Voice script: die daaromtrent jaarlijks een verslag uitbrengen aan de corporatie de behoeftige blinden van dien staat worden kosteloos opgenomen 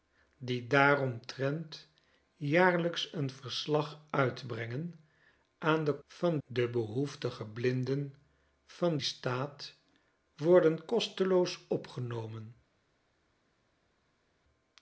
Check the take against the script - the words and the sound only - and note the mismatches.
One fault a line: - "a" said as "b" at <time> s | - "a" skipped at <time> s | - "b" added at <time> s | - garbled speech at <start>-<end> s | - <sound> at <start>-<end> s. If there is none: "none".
- "corporatie" said as "van" at 6.0 s
- "dien" skipped at 9.0 s